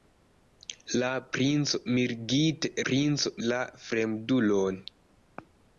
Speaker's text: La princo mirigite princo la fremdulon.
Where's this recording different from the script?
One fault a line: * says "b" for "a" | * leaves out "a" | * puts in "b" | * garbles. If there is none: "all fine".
all fine